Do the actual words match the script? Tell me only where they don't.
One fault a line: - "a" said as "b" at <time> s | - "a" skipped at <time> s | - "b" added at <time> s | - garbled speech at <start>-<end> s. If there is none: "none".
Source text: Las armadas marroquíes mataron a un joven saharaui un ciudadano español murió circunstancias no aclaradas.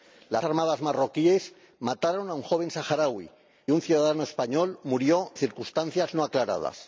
none